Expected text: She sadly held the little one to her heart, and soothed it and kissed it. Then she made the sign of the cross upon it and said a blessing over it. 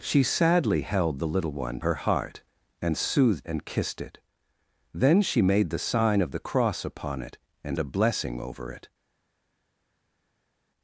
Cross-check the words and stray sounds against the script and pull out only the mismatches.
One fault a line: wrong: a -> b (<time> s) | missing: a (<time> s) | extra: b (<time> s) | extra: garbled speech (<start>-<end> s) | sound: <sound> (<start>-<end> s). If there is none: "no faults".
missing: to (1.8 s)
missing: it (3.5 s)
missing: said (7.8 s)